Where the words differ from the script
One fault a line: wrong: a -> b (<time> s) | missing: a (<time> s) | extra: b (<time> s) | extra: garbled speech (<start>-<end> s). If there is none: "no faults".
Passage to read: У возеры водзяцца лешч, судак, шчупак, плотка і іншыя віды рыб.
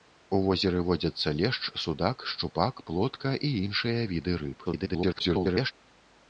extra: garbled speech (4.6-5.7 s)